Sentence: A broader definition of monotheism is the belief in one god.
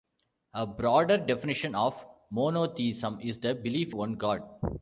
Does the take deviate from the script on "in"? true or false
true